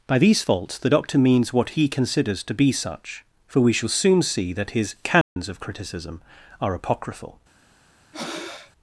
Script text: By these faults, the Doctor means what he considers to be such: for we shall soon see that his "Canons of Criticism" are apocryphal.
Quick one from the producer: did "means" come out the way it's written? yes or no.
yes